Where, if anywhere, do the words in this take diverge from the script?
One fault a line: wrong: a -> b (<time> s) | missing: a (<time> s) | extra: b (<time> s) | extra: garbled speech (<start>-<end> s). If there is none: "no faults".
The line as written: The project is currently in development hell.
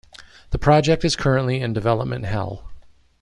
no faults